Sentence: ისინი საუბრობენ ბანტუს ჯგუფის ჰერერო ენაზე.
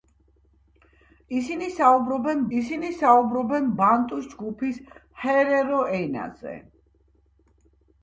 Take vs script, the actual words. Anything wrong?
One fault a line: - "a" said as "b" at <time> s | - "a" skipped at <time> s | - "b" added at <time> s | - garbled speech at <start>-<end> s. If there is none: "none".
- "ისინი საუბრობენ" added at 2.6 s